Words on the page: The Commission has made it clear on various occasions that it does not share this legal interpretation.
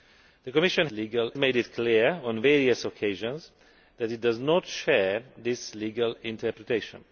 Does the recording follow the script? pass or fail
fail